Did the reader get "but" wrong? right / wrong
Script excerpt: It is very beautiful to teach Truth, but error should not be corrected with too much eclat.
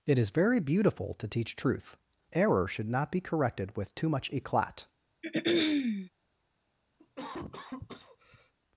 wrong